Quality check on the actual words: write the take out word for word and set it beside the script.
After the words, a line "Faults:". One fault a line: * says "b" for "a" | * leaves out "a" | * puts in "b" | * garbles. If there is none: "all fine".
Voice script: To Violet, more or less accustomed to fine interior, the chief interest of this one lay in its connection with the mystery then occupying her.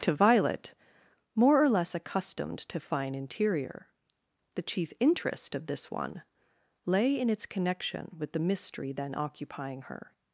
To Violet, more or less accustomed to fine interior, the chief interest of this one lay in its connection with the mystery then occupying her.
Faults:
all fine